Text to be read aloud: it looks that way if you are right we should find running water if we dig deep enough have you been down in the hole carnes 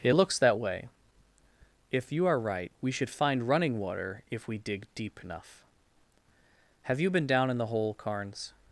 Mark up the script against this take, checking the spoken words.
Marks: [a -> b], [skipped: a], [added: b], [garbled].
it looks that way if you are right we should find running water if we dig deep enough have you been down in the hole carnes